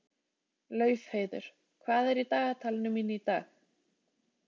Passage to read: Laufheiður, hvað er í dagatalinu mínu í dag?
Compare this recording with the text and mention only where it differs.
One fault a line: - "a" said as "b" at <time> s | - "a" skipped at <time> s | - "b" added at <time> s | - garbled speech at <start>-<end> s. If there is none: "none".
none